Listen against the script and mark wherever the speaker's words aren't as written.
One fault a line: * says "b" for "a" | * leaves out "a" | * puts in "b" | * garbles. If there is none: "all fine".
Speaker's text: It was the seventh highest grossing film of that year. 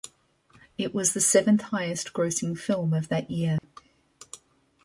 all fine